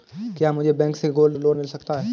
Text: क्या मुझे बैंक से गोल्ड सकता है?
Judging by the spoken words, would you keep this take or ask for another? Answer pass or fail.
fail